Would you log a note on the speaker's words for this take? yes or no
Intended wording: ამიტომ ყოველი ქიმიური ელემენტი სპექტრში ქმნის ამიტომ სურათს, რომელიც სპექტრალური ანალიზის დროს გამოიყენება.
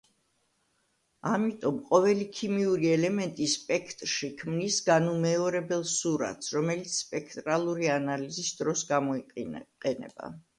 yes